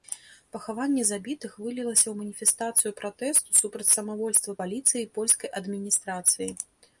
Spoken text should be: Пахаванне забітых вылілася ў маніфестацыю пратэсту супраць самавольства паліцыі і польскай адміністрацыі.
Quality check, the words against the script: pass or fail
pass